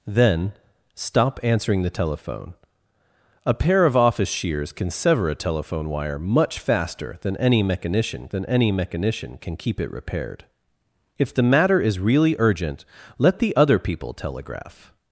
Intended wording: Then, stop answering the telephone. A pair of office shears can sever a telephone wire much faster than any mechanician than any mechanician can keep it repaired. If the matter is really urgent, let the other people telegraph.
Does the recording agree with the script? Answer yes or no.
yes